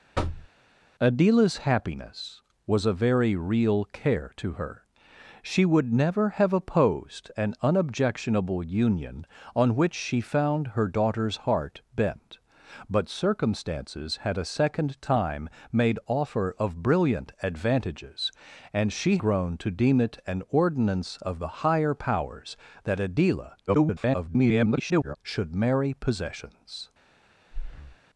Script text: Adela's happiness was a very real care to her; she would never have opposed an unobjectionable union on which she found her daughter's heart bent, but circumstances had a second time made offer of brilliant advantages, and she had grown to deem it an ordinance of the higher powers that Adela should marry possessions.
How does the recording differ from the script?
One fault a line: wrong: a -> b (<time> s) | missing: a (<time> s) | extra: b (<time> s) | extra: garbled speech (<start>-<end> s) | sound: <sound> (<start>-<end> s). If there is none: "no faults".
sound: thud (0.1-0.5 s)
missing: had (19.2 s)
extra: garbled speech (23.7-25.2 s)
sound: breath (27.5-28.0 s)